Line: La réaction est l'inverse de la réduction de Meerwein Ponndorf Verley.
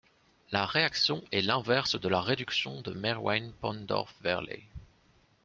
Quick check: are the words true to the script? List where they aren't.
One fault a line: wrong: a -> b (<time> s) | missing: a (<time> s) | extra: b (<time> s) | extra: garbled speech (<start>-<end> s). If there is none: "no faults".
no faults